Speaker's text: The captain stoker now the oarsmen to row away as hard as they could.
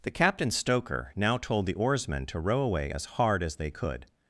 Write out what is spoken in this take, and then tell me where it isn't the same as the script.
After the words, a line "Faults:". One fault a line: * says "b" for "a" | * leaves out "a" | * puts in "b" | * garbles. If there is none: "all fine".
The captain stoker now told the oarsmen to row away as hard as they could.
Faults:
* puts in "told"